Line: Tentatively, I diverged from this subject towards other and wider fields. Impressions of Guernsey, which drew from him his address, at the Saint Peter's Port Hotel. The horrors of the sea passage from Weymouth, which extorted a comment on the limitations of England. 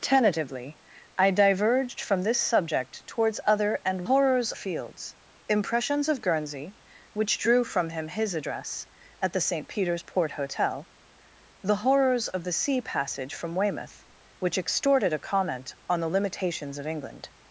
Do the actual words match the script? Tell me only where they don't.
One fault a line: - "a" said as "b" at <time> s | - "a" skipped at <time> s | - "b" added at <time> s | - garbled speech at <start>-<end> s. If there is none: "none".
- "wider" said as "horrors" at 4.0 s